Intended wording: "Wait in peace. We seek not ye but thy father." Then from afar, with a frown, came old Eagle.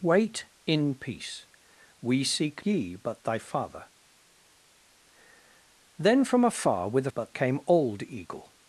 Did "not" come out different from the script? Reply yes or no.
yes